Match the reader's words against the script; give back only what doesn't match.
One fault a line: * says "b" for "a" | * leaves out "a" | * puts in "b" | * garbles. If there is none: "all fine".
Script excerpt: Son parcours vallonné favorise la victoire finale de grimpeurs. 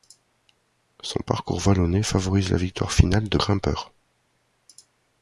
all fine